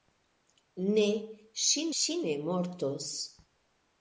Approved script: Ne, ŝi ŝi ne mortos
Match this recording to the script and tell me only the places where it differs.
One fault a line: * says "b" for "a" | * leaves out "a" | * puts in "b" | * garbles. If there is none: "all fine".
all fine